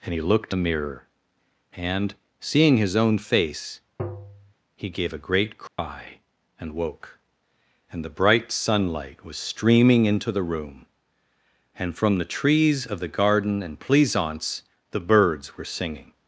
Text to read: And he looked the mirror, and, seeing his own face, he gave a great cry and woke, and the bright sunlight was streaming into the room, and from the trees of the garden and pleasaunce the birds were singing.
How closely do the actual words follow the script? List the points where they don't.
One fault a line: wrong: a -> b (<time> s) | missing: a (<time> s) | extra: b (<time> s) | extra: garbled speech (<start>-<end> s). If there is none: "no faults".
no faults